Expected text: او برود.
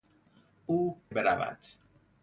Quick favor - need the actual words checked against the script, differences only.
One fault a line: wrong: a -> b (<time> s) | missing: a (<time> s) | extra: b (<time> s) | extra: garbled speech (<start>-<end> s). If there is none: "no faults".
no faults